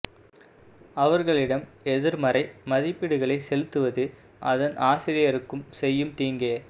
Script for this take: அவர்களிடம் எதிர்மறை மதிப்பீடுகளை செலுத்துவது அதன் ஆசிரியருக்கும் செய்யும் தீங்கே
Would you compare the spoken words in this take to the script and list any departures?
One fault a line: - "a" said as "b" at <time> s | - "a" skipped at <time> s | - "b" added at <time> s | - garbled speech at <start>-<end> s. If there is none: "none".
none